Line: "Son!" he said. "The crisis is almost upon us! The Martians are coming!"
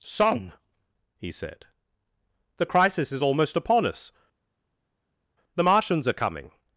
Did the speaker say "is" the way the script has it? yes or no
yes